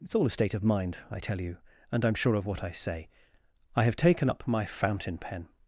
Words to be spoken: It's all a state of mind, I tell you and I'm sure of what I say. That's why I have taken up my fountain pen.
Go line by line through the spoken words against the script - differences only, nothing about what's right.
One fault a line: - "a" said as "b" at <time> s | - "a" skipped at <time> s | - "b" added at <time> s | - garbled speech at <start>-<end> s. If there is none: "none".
- "That's why" skipped at 3.1 s